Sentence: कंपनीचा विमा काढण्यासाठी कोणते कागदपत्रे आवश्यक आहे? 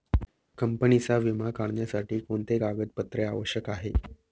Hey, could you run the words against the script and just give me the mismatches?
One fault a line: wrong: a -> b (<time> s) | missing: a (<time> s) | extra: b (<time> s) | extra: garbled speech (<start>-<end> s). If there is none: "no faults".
no faults